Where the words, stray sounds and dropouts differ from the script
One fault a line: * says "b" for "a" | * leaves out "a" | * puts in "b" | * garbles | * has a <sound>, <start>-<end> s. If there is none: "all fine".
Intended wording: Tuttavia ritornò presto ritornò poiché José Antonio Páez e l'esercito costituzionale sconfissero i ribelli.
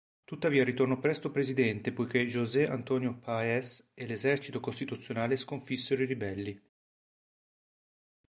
* says "presidente" for "ritornò"